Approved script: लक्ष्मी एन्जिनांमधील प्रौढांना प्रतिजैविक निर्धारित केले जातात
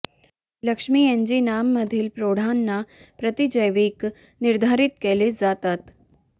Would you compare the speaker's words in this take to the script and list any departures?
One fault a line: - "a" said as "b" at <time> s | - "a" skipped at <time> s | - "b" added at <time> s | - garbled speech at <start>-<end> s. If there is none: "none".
none